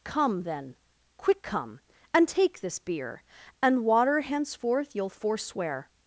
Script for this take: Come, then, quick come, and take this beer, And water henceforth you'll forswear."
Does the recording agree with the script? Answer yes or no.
yes